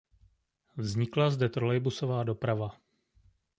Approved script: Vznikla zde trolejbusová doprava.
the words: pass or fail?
pass